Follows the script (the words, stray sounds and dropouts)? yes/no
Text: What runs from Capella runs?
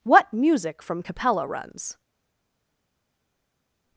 no